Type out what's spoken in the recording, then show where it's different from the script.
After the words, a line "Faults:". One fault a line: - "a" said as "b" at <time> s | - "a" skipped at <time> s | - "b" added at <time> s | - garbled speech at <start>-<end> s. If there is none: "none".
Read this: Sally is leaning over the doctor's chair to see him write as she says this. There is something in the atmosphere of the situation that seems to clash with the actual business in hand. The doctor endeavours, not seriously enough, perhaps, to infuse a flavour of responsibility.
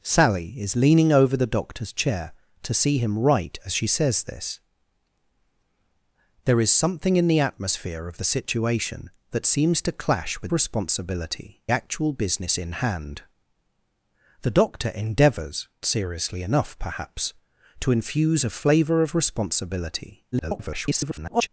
Sally is leaning over the doctor's chair to see him write as she says this. There is something in the atmosphere of the situation that seems to clash with responsibility actual business in hand. The doctor endeavours, seriously enough, perhaps, to infuse a flavour of responsibility. [garbled]
Faults:
- "the" said as "responsibility" at 10.5 s
- "not" skipped at 15.7 s
- garbled speech at 20.3-21.5 s